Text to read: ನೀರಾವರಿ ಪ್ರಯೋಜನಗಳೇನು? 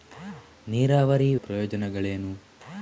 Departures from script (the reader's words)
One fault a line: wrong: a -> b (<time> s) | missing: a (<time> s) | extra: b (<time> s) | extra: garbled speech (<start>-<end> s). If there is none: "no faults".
no faults